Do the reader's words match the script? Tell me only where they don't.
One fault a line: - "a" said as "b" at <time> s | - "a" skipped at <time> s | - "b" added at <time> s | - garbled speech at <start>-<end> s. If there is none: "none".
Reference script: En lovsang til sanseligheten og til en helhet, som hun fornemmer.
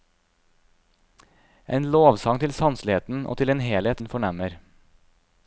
- "som" skipped at 4.0 s